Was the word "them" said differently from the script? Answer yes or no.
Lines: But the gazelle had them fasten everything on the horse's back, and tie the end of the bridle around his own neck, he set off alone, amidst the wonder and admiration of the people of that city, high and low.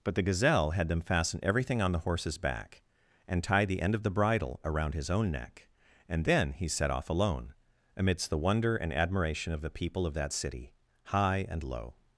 no